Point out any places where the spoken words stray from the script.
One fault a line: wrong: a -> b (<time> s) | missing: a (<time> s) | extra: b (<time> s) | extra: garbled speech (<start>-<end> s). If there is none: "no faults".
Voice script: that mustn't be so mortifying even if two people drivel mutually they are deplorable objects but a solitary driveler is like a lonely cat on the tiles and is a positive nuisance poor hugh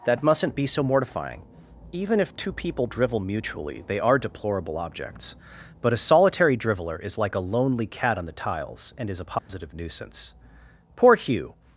no faults